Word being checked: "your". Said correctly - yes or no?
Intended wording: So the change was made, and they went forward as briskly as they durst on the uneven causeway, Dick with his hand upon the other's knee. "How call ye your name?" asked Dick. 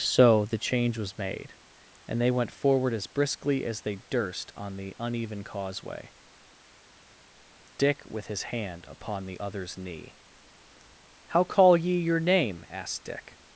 yes